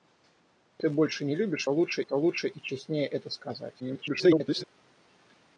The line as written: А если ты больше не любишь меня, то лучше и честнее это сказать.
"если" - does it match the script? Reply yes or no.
no